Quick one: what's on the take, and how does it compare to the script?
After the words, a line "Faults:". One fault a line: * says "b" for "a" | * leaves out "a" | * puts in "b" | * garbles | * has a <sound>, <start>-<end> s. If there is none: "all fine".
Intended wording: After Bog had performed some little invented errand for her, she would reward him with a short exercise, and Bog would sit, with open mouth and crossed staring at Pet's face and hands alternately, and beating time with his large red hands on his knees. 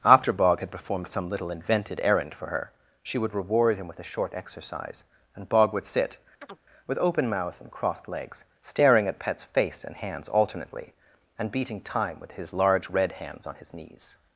After Bog had performed some little invented errand for her, she would reward him with a short exercise, and Bog would sit, with open mouth and crossed legs, staring at Pet's face and hands alternately, and beating time with his large red hands on his knees.
Faults:
* has a chirp, 6.4-6.6 s
* puts in "legs"